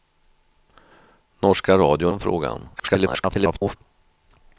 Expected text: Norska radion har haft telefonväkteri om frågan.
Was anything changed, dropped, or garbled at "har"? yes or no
yes